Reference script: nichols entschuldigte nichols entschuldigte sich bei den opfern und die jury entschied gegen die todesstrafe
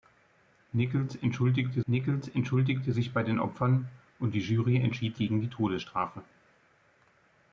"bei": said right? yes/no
yes